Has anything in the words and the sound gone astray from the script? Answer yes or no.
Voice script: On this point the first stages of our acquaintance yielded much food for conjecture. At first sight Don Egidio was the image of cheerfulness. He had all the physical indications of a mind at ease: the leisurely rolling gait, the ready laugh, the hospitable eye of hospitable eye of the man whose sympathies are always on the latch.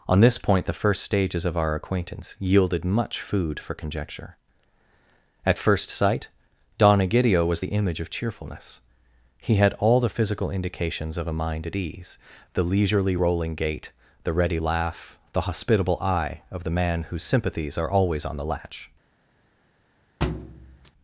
yes